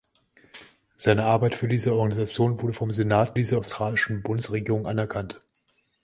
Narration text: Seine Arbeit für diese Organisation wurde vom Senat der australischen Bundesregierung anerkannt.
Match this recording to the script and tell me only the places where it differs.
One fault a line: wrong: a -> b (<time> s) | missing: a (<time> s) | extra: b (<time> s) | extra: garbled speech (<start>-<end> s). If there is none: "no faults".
wrong: der -> diese (3.3 s)